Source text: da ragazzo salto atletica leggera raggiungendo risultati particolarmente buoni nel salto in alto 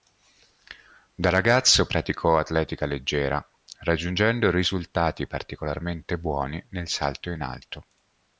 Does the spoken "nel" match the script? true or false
true